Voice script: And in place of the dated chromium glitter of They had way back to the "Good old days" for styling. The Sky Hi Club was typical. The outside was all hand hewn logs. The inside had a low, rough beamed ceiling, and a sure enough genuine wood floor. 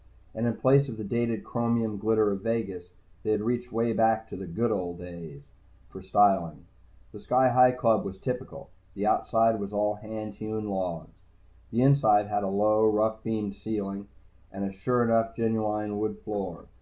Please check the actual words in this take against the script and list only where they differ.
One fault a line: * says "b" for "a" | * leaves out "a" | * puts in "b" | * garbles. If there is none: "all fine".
* puts in "Vegas"
* puts in "reached"